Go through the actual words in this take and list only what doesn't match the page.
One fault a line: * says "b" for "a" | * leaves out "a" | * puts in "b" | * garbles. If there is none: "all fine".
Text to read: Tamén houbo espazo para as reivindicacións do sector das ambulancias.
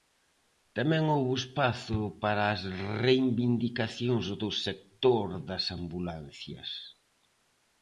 all fine